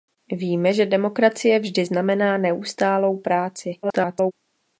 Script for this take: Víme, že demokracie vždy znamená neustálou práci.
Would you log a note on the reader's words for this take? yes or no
yes